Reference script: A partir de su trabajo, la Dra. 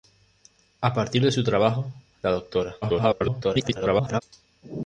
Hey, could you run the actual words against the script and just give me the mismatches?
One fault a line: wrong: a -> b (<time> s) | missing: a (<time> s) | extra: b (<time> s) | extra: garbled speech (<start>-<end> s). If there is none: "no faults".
extra: garbled speech (2.8-4.2 s)